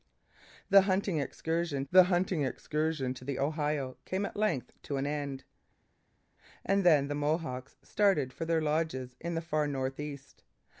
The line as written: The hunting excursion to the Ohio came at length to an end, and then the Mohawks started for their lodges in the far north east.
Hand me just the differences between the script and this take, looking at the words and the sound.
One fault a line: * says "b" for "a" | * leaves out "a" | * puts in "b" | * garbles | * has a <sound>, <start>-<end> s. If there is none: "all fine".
* puts in "the hunting excursion"